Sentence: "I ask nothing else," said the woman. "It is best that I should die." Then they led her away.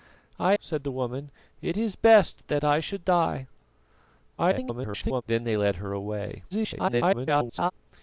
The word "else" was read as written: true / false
false